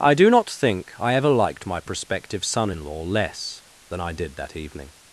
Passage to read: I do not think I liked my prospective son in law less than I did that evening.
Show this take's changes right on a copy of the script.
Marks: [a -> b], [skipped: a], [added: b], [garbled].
I do not think I [added: ever] liked my prospective son in law less than I did that evening.